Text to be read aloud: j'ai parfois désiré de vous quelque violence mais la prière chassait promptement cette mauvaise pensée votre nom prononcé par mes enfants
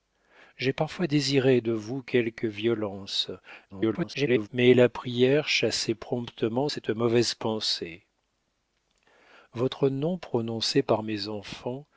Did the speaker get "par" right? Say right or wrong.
right